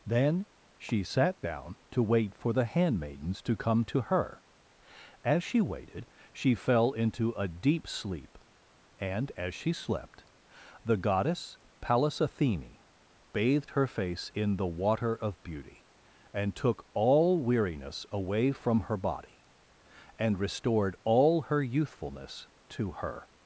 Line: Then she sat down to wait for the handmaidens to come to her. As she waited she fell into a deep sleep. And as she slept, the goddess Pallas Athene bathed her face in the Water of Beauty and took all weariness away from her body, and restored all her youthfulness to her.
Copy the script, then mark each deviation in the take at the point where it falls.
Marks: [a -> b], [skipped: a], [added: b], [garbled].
Then she sat down to wait for the handmaidens to come to her. As she waited she fell into a deep sleep. And as she slept, the goddess Pallas Athene bathed her face in the Water of Beauty and took all weariness away from her body, and restored all her youthfulness to her.